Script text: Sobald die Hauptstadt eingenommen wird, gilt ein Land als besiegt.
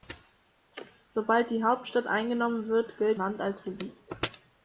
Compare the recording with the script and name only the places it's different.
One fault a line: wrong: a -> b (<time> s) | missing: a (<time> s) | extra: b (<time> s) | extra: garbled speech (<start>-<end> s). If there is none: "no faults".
missing: ein (3.2 s)